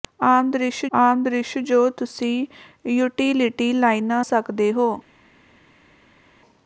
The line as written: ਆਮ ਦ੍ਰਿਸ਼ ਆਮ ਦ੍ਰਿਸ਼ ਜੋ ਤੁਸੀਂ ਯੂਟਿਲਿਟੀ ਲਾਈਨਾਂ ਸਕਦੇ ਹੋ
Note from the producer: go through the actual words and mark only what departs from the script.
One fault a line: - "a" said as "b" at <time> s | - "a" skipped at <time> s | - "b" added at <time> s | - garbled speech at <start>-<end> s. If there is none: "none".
none